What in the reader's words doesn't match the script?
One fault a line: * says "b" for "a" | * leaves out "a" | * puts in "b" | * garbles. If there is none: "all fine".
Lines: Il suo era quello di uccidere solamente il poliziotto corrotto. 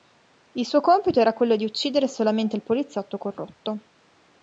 * puts in "compito"